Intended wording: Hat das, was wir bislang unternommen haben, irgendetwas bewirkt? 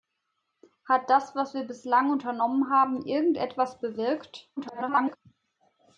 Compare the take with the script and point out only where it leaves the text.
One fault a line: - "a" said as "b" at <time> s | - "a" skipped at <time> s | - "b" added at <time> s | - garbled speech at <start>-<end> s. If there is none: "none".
- garbled speech at 4.6-5.2 s